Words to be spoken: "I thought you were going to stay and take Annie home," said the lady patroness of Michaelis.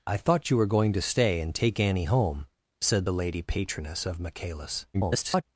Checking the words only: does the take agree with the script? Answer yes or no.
no